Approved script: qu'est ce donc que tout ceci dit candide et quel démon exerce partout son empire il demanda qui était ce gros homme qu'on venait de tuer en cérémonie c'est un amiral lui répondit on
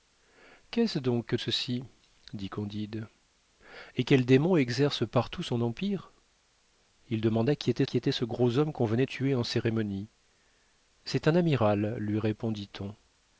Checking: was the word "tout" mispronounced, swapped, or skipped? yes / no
yes